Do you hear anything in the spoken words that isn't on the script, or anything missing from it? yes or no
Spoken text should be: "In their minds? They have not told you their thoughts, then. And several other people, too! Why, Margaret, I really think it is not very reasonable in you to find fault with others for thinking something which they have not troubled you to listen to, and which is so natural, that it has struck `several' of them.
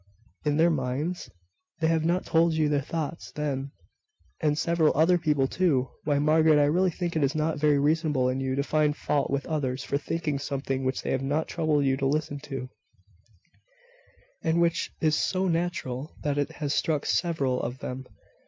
no